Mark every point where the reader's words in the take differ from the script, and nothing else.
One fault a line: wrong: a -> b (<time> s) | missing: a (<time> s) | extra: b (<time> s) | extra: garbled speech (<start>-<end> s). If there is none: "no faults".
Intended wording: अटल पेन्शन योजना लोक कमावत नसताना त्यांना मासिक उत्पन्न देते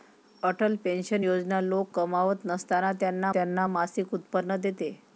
extra: त्यांना (3.3 s)